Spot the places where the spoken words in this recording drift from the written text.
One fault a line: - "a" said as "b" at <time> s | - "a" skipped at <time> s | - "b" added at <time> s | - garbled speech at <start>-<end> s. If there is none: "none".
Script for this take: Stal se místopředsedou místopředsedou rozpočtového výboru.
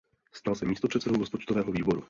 - "místopředsedou" skipped at 1.2 s